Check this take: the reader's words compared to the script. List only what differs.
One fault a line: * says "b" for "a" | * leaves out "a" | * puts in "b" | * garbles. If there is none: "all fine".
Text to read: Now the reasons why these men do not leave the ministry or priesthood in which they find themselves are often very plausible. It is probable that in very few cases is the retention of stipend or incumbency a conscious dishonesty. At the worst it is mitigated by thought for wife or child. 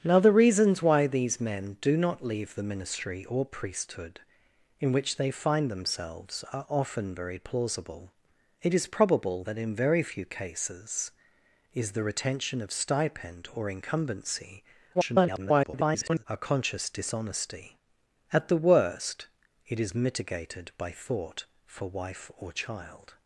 * garbles